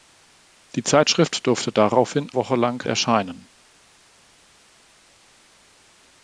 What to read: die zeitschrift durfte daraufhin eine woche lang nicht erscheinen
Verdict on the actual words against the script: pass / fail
fail